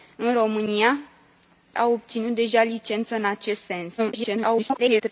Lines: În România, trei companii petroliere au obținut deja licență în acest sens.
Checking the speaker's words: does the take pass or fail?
fail